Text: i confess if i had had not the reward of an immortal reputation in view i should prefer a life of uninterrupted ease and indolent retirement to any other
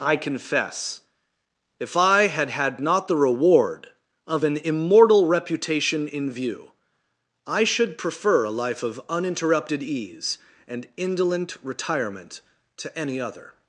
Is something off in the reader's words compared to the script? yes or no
no